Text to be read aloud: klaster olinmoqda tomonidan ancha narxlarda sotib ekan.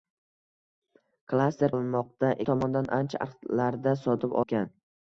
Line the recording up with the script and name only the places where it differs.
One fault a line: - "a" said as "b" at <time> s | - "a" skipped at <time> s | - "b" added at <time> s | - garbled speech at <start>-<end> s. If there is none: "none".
none